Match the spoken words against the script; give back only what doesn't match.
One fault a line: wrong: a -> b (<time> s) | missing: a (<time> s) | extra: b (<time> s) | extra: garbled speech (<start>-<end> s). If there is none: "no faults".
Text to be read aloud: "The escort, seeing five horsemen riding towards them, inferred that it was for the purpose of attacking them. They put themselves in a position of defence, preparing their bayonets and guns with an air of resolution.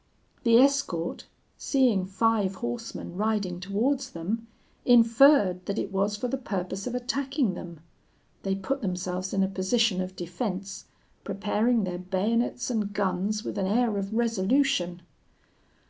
no faults